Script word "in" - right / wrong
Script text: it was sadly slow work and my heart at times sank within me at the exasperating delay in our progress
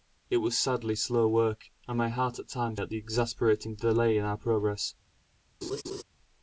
right